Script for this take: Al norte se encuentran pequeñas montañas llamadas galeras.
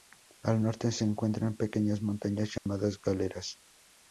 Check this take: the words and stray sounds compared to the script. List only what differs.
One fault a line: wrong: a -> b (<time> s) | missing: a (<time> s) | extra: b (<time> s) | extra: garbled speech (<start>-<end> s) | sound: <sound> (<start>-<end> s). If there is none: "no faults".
sound: dropout (2.6-2.7 s)